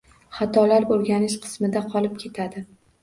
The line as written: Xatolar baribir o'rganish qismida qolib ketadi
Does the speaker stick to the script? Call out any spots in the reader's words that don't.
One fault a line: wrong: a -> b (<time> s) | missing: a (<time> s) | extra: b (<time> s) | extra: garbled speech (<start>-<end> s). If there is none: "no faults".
missing: baribir (0.9 s)